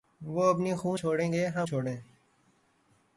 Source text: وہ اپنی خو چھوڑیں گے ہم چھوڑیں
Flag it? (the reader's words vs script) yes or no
no